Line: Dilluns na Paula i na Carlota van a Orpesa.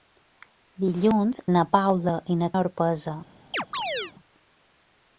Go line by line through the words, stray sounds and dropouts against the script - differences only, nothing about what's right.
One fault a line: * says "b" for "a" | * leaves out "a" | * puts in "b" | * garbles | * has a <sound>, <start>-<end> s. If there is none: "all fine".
* leaves out "Carlota van"
* has a chirp, 3.5-4.1 s